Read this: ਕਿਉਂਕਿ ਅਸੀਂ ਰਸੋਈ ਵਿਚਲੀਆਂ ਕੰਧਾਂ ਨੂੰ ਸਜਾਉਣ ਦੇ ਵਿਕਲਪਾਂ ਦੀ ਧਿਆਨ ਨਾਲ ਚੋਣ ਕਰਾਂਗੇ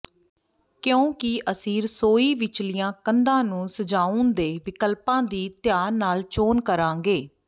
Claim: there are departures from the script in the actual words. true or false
false